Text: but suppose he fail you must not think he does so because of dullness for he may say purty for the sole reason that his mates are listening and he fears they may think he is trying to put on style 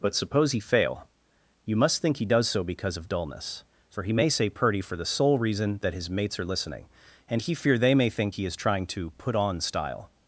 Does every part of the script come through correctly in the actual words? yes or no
no